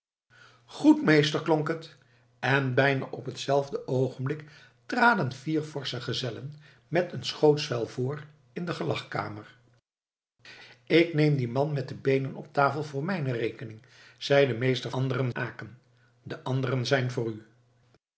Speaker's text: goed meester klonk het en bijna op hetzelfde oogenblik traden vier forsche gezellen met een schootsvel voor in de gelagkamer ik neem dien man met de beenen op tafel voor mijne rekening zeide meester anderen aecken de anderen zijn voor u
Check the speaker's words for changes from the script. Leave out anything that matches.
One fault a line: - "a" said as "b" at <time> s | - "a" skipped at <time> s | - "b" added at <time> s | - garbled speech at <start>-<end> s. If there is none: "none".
none